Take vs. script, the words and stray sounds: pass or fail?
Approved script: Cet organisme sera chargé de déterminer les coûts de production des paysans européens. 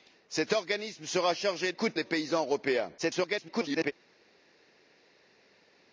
fail